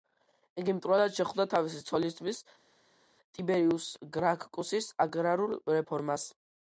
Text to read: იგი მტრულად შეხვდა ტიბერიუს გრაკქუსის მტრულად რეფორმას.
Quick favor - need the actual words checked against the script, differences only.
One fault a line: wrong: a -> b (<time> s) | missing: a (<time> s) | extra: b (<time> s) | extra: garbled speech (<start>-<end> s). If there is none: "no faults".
extra: თავისი ცოლისძმის (1.5 s)
wrong: მტრულად -> აგრარულ (5.1 s)